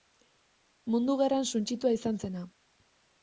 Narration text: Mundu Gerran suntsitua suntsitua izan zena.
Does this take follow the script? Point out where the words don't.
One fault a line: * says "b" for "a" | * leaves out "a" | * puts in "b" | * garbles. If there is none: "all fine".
* leaves out "suntsitua"